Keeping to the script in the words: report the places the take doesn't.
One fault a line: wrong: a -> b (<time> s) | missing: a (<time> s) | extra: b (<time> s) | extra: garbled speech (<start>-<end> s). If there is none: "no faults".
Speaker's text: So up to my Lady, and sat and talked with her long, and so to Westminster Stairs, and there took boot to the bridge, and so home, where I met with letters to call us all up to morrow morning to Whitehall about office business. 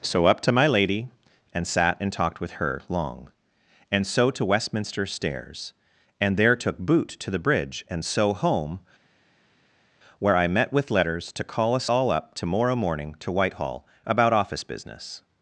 no faults